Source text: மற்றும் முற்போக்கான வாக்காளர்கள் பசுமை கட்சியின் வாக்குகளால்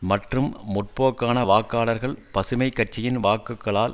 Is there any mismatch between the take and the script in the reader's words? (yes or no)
no